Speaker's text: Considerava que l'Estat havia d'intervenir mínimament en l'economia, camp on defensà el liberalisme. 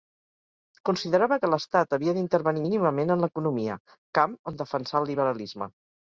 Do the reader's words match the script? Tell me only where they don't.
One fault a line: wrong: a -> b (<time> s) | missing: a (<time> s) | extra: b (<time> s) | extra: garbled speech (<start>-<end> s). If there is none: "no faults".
no faults